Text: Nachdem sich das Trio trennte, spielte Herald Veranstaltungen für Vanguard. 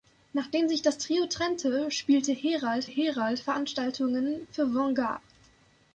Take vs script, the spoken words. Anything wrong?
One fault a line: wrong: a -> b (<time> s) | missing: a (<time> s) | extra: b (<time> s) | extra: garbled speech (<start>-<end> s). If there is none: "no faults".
extra: Herald (2.8 s)